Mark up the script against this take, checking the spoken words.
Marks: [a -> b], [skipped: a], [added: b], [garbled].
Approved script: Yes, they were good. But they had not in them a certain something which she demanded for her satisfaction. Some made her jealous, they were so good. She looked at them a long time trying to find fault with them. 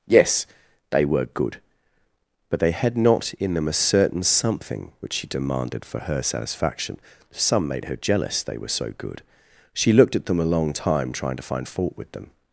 Yes, they were good. But they had not in them a certain something which she demanded for her satisfaction. Some made her jealous, they were so good. She looked at them a long time trying to find fault with them.